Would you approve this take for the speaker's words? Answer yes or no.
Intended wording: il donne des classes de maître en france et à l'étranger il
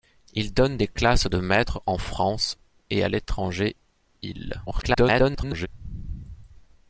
no